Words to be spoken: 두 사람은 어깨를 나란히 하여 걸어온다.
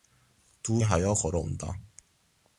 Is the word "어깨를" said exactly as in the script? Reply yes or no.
no